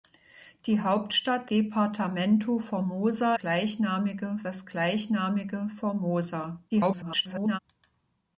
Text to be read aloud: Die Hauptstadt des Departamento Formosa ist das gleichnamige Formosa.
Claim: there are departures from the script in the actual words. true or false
true